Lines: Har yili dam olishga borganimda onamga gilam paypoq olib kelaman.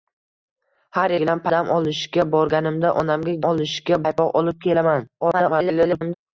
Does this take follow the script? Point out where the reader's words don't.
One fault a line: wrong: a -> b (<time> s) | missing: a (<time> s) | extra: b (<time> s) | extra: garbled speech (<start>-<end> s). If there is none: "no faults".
wrong: yili -> gilam (1.2 s)
wrong: gilam -> olishga (3.5 s)
extra: garbled speech (5.2-6.1 s)